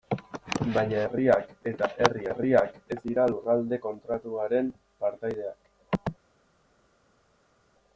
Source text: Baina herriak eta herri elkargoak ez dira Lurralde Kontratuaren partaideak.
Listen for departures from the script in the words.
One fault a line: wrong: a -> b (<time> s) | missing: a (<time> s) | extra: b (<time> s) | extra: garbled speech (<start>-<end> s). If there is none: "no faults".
wrong: elkargoak -> herriak (2.3 s)